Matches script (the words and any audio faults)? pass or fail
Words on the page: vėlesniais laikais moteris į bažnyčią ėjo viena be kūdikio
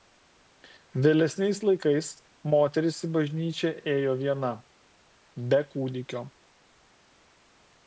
pass